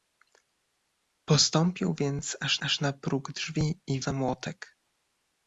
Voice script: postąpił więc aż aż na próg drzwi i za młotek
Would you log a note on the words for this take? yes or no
no